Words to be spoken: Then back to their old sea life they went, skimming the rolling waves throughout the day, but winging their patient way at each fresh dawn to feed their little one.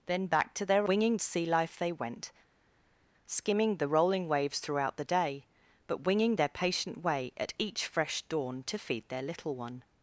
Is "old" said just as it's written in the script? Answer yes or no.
no